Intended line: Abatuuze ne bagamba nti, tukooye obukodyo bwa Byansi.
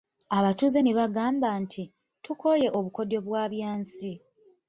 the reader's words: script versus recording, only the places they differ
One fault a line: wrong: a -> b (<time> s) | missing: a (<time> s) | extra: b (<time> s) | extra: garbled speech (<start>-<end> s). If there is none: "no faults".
no faults